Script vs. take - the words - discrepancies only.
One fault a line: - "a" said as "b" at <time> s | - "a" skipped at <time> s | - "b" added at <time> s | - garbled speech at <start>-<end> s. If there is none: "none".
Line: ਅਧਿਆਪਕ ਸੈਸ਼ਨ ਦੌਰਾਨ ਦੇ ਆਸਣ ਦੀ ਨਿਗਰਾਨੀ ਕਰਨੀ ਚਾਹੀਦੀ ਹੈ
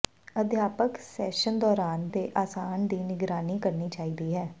none